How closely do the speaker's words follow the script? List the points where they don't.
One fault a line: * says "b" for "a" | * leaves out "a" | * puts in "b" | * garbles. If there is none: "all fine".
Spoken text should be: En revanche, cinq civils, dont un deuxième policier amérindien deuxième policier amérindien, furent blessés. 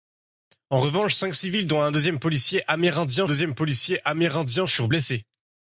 all fine